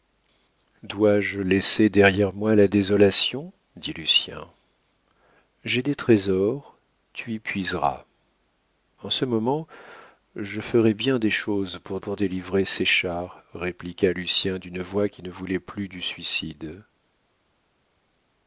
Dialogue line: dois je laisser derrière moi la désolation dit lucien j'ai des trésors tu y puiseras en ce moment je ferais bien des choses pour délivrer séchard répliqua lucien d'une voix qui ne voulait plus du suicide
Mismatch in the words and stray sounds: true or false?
true